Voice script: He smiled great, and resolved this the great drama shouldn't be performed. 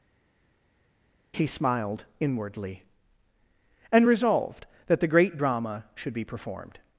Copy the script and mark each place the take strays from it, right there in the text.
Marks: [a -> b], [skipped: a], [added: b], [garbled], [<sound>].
He smiled [great, -> inwardly] and resolved [this -> that] the great drama [shouldn't -> should] be performed.